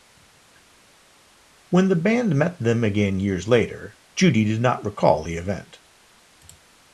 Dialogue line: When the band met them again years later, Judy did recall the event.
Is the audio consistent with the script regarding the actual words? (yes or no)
no